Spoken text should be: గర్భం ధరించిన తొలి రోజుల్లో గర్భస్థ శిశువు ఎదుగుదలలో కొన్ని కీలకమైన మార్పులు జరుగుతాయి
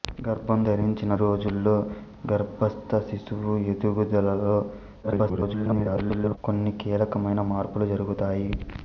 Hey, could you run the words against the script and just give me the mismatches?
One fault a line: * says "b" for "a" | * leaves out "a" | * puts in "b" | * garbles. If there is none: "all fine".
* leaves out "తొలి"
* garbles